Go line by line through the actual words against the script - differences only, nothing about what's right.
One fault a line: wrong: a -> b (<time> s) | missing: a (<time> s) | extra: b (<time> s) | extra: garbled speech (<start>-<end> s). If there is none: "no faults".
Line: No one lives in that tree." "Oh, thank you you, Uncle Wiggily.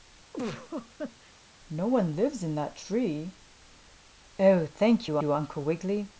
no faults